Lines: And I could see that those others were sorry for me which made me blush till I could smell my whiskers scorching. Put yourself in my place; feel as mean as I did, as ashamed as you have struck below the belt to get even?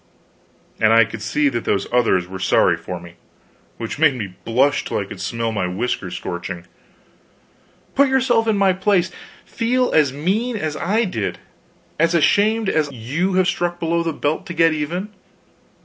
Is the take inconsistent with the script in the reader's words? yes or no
no